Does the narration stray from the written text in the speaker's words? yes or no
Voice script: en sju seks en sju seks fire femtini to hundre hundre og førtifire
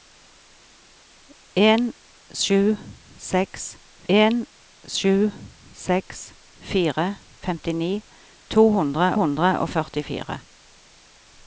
no